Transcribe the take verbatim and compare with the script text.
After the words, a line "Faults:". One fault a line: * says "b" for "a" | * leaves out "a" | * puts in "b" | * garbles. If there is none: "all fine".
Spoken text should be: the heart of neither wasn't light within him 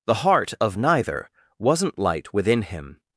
the heart of neither wasn't light within him
Faults:
all fine